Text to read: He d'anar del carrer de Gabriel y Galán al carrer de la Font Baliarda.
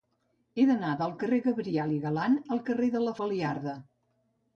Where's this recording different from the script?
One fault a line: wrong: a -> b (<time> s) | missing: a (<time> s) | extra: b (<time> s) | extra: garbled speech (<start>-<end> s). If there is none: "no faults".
missing: Font (3.1 s)